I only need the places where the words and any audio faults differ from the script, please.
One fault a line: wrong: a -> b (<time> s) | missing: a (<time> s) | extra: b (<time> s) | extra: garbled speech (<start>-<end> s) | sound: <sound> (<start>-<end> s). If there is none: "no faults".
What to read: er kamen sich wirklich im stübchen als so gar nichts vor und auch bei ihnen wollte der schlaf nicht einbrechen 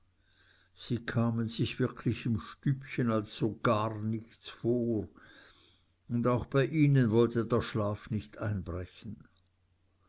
wrong: er -> sie (0.7 s)